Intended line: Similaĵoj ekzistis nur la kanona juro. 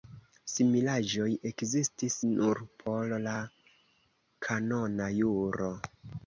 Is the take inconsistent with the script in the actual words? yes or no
yes